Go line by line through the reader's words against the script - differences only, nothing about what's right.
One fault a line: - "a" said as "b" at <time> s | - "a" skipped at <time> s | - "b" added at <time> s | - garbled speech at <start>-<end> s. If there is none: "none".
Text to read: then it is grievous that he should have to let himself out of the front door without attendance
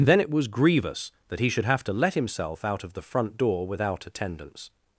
- "is" said as "was" at 0.3 s